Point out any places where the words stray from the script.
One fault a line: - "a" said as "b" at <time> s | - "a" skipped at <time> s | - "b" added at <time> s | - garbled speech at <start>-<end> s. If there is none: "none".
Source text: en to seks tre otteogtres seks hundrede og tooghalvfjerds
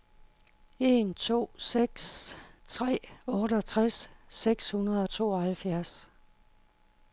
none